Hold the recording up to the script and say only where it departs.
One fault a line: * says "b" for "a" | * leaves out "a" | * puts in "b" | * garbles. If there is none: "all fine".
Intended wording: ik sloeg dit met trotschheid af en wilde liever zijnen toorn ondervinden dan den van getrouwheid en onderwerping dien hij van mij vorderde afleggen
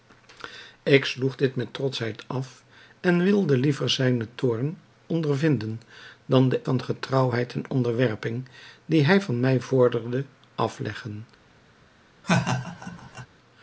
all fine